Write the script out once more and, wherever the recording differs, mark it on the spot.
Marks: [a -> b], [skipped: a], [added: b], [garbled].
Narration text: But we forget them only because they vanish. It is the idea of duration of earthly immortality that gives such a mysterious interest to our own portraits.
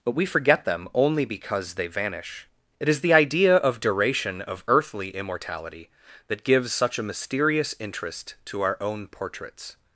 But we forget them only because they vanish. It is the idea of duration of earthly immortality that gives such a mysterious interest to our own portraits.